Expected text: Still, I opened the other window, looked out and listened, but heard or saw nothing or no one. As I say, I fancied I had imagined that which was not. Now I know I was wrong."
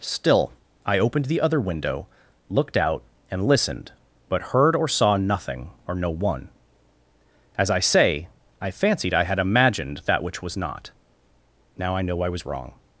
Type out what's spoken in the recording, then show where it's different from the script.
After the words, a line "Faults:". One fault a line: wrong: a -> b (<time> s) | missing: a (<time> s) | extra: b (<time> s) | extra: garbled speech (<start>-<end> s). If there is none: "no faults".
Still, I opened the other window, looked out and listened, but heard or saw nothing or no one. As I say, I fancied I had imagined that which was not. Now I know I was wrong."
Faults:
no faults